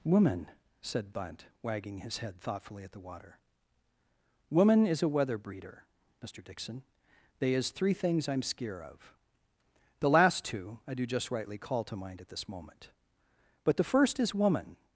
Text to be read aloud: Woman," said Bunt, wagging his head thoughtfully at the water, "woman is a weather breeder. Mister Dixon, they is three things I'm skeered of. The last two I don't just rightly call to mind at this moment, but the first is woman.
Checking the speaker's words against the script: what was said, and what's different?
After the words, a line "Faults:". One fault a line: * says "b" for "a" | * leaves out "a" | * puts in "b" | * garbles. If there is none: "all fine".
Woman," said Bunt, wagging his head thoughtfully at the water, "woman is a weather breeder. Mister Dixon, they is three things I'm skeer of. The last two I do just rightly call to mind at this moment, but the first is woman.
Faults:
* says "skeer" for "skeered"
* says "do" for "don't"